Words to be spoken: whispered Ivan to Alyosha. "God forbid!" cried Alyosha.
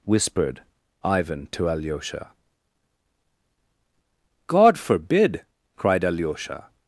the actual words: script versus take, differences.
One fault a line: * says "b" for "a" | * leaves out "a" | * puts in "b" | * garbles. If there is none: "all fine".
all fine